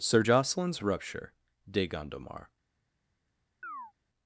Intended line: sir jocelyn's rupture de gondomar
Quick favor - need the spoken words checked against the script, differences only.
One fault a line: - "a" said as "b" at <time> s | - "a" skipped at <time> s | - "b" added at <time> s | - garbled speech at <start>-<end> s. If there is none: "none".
none